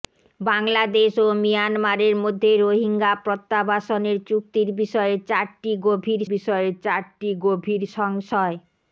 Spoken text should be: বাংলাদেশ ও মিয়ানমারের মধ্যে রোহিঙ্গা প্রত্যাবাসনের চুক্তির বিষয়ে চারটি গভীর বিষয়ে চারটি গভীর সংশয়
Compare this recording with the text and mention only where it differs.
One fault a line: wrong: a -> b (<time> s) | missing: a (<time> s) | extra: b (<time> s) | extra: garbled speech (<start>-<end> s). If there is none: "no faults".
no faults